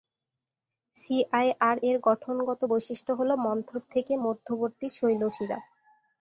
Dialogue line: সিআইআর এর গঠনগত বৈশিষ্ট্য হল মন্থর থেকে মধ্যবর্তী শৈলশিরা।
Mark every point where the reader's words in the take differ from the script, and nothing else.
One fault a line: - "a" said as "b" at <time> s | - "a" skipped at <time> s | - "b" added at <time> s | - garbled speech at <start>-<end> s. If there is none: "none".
none